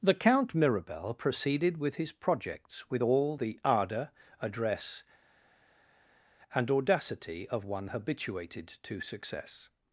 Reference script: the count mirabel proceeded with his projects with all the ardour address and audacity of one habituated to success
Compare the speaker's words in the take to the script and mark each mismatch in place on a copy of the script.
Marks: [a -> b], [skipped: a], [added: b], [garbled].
the count mirabel proceeded with his projects with all the ardour address and audacity of one habituated to success